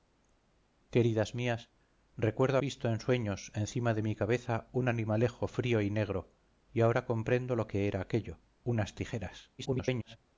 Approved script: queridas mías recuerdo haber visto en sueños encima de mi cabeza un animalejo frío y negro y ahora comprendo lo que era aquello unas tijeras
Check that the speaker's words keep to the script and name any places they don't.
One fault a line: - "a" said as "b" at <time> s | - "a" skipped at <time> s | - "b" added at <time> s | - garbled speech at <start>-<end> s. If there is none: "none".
- "haber" skipped at 2.6 s
- garbled speech at 9.6-10.2 s